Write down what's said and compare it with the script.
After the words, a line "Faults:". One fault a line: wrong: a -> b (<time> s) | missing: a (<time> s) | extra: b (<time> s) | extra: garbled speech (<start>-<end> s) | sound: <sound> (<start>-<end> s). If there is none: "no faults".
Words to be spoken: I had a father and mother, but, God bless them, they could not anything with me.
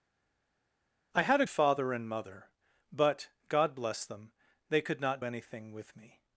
I had a father and mother, but, God bless them, they could not anything with me.
Faults:
no faults